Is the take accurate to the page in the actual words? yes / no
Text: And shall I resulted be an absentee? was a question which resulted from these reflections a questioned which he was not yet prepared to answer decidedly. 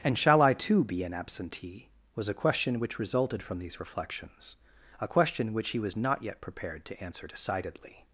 no